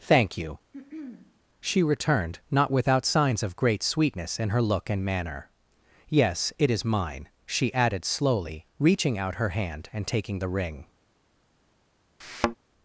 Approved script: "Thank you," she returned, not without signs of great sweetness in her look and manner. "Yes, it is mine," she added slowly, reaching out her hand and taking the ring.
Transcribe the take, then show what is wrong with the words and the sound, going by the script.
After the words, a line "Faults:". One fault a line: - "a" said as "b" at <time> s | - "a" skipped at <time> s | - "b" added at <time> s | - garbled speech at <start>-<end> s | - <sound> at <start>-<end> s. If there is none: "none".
"Thank you," she returned, not without signs of great sweetness in her look and manner. "Yes, it is mine," she added slowly, reaching out her hand and taking the ring.
Faults:
- throat clearing at 0.7-1.4 s
- thud at 12.2-12.6 s